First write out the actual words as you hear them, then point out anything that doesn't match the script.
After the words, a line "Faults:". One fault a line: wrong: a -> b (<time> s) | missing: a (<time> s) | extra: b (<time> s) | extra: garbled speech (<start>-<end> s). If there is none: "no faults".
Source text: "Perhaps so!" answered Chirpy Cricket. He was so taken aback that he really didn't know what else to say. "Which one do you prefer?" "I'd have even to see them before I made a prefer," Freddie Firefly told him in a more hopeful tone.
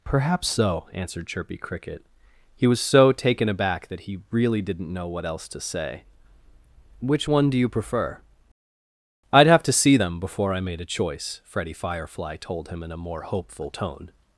"Perhaps so!" answered Chirpy Cricket. He was so taken aback that he really didn't know what else to say. "Which one do you prefer?" "I'd have to see them before I made a choice," Freddie Firefly told him in a more hopeful tone.
Faults:
missing: even (9.6 s)
wrong: prefer -> choice (10.9 s)